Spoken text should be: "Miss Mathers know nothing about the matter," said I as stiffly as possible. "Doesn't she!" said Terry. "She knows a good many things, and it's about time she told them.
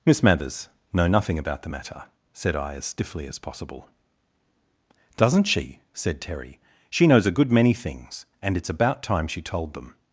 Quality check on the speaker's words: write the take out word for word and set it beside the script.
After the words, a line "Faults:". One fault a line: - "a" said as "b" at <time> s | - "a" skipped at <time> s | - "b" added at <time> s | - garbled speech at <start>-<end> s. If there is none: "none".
"Miss Mathers know nothing about the matter," said I as stiffly as possible. "Doesn't she!" said Terry. "She knows a good many things, and it's about time she told them.
Faults:
none